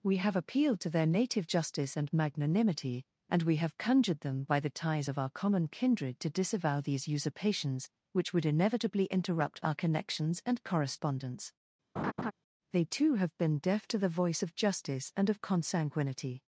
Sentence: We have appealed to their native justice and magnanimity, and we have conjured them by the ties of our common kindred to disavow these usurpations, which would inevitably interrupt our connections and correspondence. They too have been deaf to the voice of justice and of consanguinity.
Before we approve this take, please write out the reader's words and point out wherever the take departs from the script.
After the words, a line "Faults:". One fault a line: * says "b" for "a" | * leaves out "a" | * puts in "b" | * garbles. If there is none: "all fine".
We have appealed to their native justice and magnanimity, and we have conjured them by the ties of our common kindred to disavow these usurpations, which would inevitably interrupt our connections and correspondence. They too have been deaf to the voice of justice and of consanguinity.
Faults:
all fine